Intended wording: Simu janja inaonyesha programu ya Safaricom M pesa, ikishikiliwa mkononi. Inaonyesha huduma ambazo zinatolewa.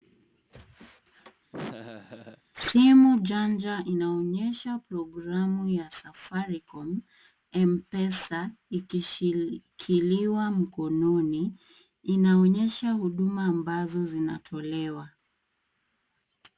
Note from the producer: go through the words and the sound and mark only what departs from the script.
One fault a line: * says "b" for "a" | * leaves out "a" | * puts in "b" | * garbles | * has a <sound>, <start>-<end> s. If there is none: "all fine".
* has a laugh, 1.5-2.4 s